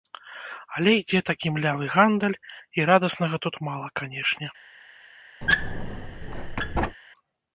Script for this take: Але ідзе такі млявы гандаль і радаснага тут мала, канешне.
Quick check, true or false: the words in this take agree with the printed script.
true